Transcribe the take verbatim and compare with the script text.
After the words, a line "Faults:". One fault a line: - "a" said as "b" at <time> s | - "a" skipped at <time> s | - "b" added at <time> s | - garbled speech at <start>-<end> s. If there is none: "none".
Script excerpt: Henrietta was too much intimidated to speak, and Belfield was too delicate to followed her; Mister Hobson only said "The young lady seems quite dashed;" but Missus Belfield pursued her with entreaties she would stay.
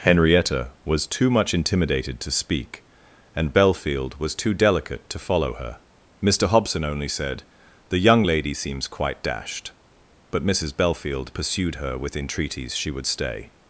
Henrietta was too much intimidated to speak, and Belfield was too delicate to follow her; Mister Hobson only said "The young lady seems quite dashed;" but Missus Belfield pursued her with entreaties she would stay.
Faults:
- "followed" said as "follow" at 5.2 s